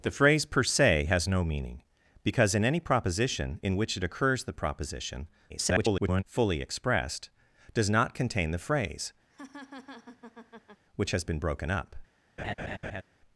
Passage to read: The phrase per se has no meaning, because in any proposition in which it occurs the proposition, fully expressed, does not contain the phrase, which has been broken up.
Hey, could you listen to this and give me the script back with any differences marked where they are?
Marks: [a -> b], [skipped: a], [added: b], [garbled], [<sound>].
The phrase per se has no meaning, because in any proposition in which it occurs the proposition, [garbled] fully expressed, does not contain the phrase, [laugh] which has been broken up. [laugh]